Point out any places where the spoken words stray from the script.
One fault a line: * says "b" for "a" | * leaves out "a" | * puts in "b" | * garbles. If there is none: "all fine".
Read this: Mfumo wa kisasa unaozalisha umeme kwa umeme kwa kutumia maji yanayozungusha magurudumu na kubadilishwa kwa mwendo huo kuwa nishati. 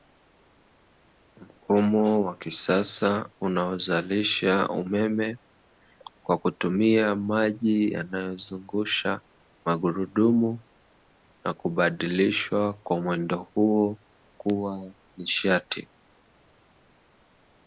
* leaves out "umeme kwa"